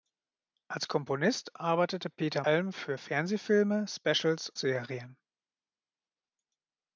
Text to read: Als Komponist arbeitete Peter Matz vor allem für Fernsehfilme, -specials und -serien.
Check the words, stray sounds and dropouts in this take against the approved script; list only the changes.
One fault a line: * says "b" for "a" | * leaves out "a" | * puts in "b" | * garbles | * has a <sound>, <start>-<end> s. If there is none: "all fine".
* leaves out "Matz vor"
* leaves out "und"